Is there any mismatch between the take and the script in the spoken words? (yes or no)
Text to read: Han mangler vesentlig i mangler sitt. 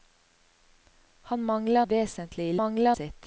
no